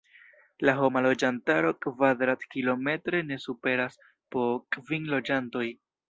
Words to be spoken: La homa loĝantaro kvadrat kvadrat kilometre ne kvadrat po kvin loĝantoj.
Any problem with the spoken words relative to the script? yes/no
yes